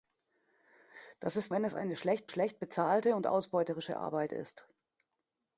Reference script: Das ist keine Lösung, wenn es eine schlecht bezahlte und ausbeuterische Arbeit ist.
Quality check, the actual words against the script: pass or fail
fail